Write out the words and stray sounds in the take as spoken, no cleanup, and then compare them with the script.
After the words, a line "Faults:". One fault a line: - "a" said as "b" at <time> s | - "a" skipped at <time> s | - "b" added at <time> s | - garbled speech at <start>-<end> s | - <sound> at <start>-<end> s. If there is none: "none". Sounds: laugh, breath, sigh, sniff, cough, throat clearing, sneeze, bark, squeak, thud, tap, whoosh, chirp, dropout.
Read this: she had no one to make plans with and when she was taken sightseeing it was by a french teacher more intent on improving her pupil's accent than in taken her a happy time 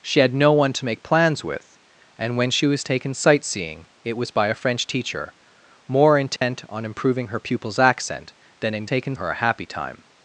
she had no one to make plans with and when she was taken sightseeing it was by a french teacher more intent on improving her pupil's accent than in taken her a happy time
Faults:
- dropout at 6.4-6.4 s